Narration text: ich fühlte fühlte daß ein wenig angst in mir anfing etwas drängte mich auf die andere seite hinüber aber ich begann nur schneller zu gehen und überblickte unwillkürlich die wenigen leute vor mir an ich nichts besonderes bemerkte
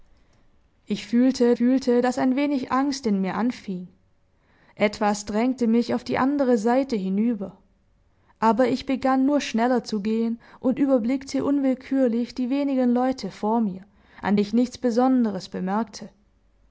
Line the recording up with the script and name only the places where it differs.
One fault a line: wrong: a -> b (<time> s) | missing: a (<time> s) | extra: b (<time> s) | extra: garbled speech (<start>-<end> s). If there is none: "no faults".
no faults